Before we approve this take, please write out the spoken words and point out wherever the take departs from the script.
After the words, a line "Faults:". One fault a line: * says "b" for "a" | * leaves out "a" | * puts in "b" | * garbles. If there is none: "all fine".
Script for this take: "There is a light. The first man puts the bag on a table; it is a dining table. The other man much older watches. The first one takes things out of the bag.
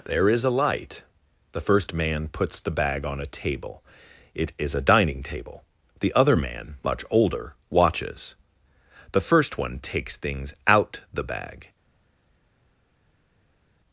"There is a light. The first man puts the bag on a table; it is a dining table. The other man much older watches. The first one takes things out the bag.
Faults:
* leaves out "of"